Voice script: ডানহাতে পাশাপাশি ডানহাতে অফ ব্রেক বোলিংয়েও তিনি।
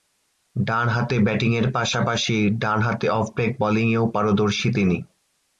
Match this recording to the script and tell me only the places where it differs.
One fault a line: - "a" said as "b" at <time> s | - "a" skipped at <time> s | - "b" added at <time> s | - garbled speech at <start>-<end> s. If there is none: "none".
- "ব্যাটিংয়ের" added at 1.2 s
- "পারদর্শী" added at 4.1 s